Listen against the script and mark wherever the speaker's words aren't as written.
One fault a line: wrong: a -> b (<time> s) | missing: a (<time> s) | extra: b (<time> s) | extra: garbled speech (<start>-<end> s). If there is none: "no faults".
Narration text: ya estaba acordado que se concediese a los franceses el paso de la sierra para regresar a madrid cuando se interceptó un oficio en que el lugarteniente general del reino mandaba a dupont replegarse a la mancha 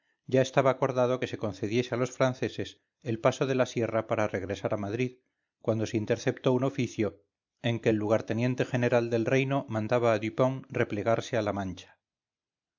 no faults